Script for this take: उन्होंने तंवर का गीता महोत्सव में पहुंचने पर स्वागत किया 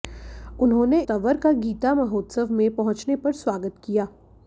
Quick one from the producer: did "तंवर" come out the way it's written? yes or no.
yes